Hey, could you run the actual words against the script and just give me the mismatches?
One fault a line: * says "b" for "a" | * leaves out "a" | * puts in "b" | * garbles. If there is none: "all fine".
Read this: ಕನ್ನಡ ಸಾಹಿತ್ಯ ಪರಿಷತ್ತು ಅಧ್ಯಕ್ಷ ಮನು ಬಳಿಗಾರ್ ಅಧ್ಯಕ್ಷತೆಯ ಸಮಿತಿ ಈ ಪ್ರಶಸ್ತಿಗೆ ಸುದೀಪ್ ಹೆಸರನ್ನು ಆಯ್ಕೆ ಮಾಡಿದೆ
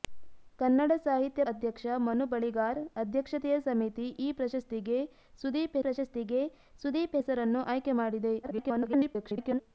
* leaves out "ಪರಿಷತ್ತು"
* puts in "ಪ್ರಶಸ್ತಿಗೆ ಸುದೀಪ್"
* garbles